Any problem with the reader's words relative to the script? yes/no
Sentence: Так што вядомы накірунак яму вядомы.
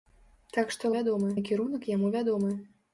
no